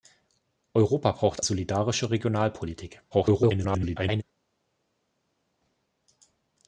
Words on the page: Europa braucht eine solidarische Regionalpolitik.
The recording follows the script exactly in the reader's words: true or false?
false